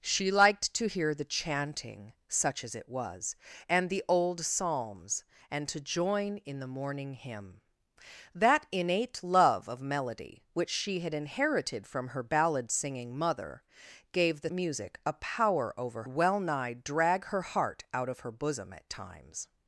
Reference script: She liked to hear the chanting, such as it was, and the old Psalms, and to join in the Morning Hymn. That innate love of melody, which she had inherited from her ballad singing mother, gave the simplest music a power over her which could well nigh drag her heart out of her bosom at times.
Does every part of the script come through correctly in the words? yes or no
no